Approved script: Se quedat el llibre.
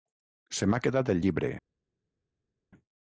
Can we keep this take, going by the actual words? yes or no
no